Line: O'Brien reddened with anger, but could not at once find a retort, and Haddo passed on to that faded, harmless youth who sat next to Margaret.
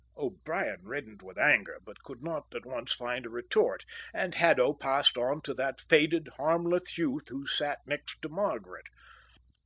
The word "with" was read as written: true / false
true